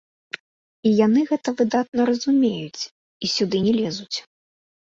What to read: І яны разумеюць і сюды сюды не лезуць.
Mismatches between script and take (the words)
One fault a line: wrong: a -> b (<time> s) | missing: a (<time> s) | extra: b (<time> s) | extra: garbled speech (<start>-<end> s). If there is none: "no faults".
extra: гэта выдатна (1.3 s)
missing: сюды (3.6 s)